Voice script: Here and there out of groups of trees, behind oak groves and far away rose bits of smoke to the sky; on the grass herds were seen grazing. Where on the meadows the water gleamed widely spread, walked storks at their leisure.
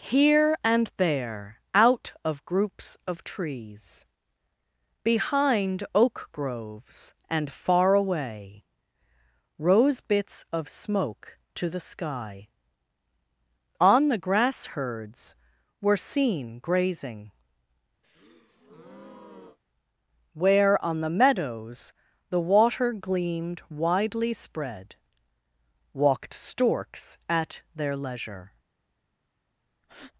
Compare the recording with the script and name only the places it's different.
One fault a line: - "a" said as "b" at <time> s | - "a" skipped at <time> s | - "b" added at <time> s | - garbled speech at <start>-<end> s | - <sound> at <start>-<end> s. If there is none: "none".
- breath at 18.0-19.6 s
- breath at 29.8-30.1 s